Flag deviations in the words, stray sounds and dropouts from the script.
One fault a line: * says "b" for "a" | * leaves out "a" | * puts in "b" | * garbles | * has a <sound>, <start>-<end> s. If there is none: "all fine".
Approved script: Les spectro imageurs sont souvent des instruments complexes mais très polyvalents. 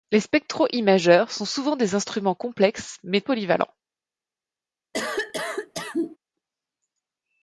* leaves out "très"
* has a cough, 4.9-6.2 s